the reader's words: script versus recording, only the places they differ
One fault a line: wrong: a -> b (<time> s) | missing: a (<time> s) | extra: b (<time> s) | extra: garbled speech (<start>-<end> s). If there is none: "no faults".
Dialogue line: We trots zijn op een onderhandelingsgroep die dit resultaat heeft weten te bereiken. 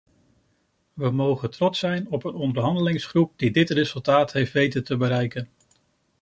extra: mogen (1.1 s)